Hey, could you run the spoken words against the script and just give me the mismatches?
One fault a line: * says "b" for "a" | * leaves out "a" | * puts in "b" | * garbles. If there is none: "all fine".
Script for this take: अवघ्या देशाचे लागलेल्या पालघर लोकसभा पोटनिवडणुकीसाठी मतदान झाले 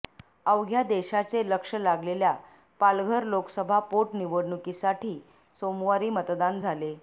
* puts in "लक्ष"
* puts in "सोमवारी"